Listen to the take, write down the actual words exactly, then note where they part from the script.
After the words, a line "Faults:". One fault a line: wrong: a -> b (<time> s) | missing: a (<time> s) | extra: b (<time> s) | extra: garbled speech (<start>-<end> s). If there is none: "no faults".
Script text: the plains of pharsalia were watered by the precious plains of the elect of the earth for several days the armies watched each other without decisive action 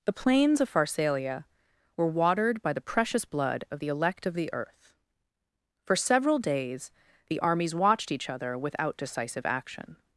the plains of pharsalia were watered by the precious blood of the elect of the earth for several days the armies watched each other without decisive action
Faults:
wrong: plains -> blood (3.3 s)